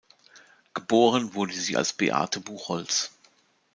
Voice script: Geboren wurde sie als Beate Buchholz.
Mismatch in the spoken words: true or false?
false